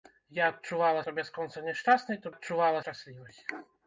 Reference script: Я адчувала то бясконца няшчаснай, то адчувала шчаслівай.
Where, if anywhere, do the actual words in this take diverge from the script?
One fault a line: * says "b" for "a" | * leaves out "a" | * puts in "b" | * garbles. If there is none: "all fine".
all fine